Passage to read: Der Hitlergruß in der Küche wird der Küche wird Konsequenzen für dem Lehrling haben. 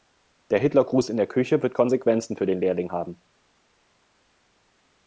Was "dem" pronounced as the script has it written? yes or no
no